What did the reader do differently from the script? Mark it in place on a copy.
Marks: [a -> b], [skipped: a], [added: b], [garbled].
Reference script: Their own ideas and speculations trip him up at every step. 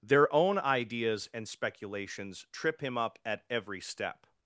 Their own ideas and speculations trip him up at every step.